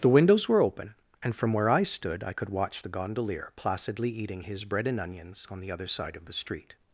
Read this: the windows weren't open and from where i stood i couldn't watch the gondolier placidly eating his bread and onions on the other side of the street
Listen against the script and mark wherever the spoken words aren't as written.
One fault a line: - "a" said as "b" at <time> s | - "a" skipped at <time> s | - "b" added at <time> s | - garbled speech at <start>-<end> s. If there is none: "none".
- "weren't" said as "were" at 0.5 s
- "couldn't" said as "could" at 2.3 s